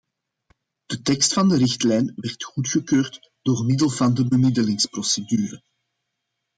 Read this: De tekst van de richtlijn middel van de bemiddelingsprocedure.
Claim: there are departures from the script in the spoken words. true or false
true